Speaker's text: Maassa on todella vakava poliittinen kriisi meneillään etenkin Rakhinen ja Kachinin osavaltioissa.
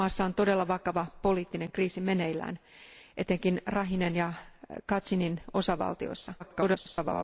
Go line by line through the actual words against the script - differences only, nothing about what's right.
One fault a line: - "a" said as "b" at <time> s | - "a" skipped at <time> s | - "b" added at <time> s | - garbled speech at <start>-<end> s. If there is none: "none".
- garbled speech at 6.4-7.2 s